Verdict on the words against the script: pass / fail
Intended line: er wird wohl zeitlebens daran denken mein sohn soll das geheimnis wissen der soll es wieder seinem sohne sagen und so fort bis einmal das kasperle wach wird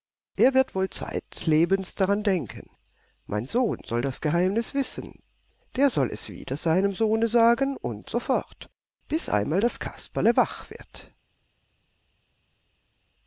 pass